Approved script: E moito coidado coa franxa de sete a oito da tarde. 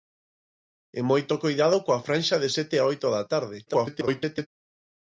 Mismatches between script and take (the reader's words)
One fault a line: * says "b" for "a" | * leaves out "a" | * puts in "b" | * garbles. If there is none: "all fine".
* garbles